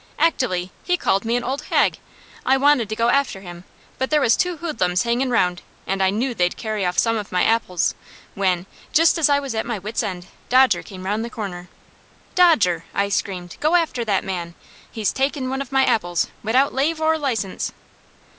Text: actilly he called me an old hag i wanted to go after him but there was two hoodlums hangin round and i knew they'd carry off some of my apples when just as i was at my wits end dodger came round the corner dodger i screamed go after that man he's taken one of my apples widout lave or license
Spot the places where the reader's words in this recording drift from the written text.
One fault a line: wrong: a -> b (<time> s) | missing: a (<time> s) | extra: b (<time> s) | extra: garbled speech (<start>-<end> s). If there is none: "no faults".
no faults